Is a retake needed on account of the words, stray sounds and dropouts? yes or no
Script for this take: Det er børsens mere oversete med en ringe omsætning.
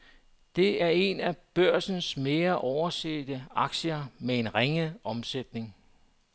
yes